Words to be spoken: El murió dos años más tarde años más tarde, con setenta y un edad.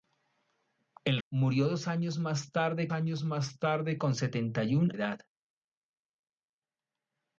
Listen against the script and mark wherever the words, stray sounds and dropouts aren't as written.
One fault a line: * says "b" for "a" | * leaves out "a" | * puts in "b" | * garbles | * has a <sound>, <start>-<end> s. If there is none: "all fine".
all fine